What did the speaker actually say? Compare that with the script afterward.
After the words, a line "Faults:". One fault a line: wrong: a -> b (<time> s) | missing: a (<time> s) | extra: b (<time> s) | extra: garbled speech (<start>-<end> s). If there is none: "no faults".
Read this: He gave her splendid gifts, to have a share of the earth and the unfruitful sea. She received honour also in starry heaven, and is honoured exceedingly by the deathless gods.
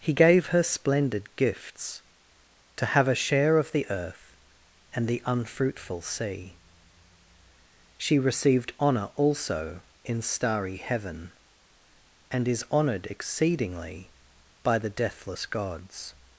He gave her splendid gifts, to have a share of the earth and the unfruitful sea. She received honour also in starry heaven, and is honoured exceedingly by the deathless gods.
Faults:
no faults